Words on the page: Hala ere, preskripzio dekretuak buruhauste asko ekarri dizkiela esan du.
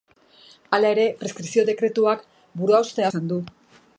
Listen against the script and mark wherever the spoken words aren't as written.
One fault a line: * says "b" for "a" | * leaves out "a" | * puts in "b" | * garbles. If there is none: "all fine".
* leaves out "asko ekarri dizkiela"